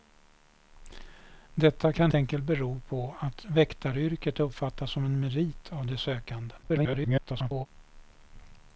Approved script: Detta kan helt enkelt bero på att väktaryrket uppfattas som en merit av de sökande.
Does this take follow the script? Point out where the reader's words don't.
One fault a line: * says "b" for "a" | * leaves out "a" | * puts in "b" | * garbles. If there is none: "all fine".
* leaves out "helt"
* garbles